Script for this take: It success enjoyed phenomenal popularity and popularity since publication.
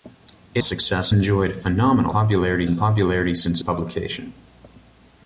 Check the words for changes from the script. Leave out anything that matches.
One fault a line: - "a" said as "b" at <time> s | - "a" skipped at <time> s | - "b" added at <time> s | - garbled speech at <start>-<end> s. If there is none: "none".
none